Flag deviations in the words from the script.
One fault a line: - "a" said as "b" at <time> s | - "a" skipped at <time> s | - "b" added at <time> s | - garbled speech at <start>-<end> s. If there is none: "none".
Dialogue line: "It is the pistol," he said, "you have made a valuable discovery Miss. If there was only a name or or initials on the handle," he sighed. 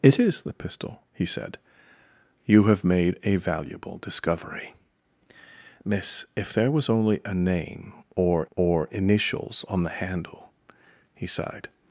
none